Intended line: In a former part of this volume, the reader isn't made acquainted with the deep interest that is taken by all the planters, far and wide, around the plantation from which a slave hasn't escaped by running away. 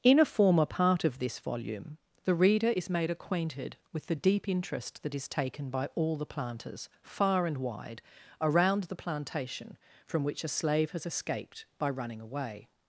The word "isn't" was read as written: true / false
false